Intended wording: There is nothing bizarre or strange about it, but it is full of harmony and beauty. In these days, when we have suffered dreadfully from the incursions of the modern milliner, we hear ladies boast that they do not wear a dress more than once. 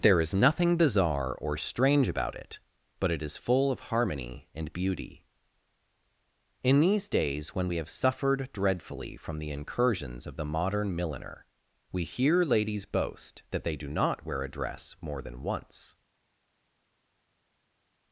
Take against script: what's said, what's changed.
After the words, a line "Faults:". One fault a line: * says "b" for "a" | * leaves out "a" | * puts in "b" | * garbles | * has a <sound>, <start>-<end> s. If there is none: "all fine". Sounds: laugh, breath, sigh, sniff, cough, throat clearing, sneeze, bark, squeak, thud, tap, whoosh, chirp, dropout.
There is nothing bizarre or strange about it, but it is full of harmony and beauty. In these days, when we have suffered dreadfully from the incursions of the modern milliner, we hear ladies boast that they do not wear a dress more than once.
Faults:
all fine